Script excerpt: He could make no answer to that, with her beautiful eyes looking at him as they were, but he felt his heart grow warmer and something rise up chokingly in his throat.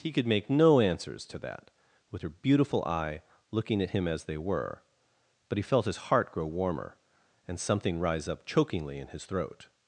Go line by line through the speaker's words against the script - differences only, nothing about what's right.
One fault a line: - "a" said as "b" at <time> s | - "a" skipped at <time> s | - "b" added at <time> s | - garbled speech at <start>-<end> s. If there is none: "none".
- "answer" said as "answers" at 0.8 s
- "eyes" said as "eye" at 2.9 s